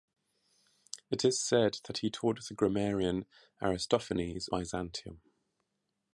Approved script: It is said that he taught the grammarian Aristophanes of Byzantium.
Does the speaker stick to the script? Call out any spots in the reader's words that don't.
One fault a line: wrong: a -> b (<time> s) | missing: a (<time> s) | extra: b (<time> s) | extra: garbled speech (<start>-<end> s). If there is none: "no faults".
missing: of (4.5 s)